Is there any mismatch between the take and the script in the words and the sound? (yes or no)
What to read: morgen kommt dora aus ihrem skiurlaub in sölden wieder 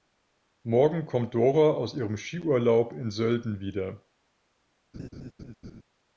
yes